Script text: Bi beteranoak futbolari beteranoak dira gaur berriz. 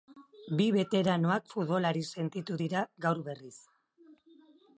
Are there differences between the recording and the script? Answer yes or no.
yes